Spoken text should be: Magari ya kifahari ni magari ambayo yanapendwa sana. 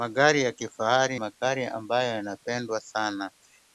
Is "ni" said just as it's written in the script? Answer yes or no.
no